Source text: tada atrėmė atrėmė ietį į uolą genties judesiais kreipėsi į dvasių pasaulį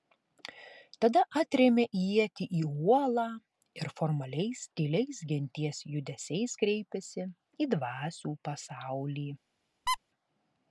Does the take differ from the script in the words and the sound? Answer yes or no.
yes